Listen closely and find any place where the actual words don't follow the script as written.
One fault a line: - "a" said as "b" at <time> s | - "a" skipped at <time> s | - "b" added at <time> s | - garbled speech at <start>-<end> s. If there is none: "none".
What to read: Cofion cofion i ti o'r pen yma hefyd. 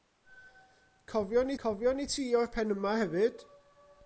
none